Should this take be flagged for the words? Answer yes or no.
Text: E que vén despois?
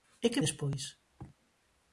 yes